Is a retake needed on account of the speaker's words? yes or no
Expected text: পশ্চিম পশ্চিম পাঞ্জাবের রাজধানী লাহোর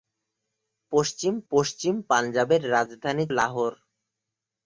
no